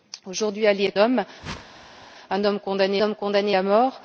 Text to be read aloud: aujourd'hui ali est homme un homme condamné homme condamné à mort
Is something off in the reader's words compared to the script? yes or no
no